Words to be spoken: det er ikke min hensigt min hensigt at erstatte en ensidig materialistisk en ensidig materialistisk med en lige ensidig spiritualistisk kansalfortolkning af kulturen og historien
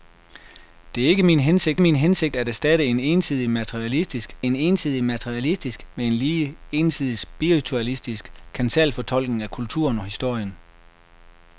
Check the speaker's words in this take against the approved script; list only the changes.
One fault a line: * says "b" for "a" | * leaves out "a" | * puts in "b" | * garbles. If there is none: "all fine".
all fine